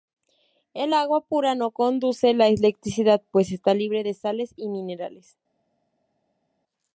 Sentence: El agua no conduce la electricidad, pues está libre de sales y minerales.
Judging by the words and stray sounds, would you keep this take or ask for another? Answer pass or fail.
fail